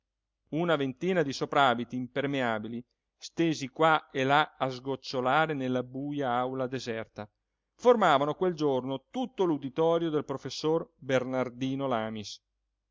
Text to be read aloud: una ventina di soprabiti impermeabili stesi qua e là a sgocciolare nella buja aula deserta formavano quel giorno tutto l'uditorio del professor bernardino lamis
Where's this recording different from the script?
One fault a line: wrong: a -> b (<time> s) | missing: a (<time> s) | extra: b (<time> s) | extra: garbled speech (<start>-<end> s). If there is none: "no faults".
no faults